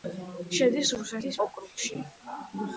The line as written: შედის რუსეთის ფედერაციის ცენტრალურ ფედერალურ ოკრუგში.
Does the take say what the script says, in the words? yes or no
no